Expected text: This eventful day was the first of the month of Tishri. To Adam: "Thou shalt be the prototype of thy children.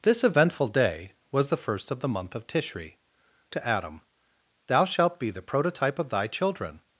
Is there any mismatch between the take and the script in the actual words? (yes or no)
no